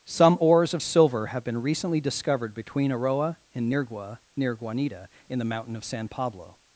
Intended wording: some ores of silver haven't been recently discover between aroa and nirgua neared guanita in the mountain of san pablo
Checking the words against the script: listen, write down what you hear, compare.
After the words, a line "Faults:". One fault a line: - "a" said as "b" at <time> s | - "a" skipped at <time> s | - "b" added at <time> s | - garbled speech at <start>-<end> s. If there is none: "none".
some ores of silver have been recently discovered between aroa and nirgua near guanita in the mountain of san pablo
Faults:
- "haven't" said as "have" at 1.3 s
- "discover" said as "discovered" at 2.0 s
- "neared" said as "near" at 4.4 s